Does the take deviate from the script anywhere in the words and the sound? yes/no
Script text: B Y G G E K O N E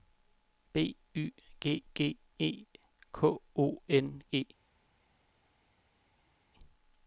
no